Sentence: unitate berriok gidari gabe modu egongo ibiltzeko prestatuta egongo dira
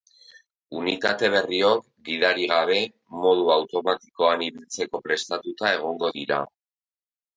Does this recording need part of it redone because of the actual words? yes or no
yes